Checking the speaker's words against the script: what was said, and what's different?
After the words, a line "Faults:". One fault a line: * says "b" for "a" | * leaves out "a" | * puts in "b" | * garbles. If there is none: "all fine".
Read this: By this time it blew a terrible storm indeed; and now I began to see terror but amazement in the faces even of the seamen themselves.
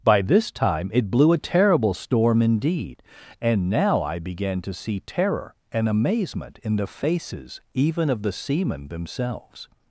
By this time it blew a terrible storm indeed; and now I began to see terror and amazement in the faces even of the seamen themselves.
Faults:
* says "and" for "but"